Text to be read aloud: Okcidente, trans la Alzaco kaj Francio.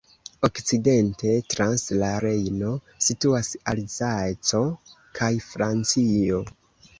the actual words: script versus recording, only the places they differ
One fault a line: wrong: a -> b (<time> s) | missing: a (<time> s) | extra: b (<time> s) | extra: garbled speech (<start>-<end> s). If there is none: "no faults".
extra: Rejno situas (2.2 s)